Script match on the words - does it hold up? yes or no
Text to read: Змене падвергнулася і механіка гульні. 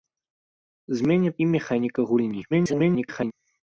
no